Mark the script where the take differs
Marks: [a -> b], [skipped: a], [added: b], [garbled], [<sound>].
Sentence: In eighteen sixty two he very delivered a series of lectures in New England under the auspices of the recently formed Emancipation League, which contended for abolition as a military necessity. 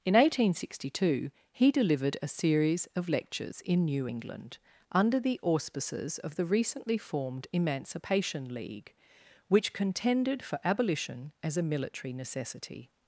In eighteen sixty two he [skipped: very] delivered a series of lectures in New England under the auspices of the recently formed Emancipation League, which contended for abolition as a military necessity.